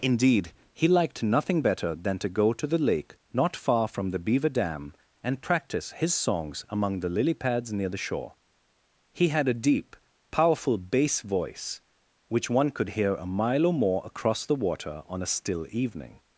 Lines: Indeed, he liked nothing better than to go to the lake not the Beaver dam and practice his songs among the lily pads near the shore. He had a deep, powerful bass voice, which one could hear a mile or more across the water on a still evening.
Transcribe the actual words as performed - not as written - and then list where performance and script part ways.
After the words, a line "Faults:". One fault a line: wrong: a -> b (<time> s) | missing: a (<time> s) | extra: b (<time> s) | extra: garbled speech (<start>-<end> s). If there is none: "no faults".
Indeed, he liked nothing better than to go to the lake not far from the Beaver dam and practice his songs among the lily pads near the shore. He had a deep, powerful bass voice, which one could hear a mile or more across the water on a still evening.
Faults:
extra: far from (3.5 s)